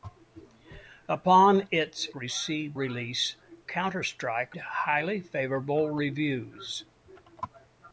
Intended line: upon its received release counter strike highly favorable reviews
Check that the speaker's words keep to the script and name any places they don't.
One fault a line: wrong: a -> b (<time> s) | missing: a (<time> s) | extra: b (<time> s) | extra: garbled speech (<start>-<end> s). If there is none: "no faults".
no faults